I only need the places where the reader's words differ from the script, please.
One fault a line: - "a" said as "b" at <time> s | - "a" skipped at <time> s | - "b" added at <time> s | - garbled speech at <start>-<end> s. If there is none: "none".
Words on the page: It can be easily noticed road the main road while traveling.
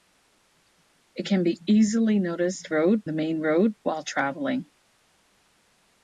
none